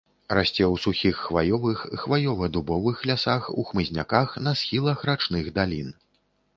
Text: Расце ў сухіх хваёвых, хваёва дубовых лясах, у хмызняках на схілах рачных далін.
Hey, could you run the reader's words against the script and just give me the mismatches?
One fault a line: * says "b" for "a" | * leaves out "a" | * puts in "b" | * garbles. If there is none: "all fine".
all fine